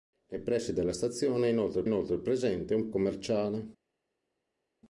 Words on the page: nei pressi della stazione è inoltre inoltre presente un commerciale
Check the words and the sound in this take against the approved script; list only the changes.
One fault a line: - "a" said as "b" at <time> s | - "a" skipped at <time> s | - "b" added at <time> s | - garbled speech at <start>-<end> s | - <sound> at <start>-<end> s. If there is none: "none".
none